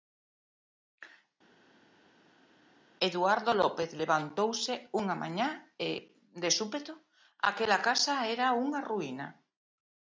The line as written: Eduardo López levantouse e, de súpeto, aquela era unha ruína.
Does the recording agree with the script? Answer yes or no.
no